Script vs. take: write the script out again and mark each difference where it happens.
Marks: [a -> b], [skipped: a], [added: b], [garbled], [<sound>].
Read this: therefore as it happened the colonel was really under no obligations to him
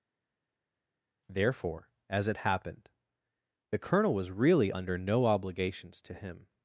therefore as it happened the colonel was really under no obligations to him